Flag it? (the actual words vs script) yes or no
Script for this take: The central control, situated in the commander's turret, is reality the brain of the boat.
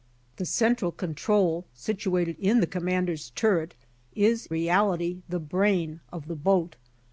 no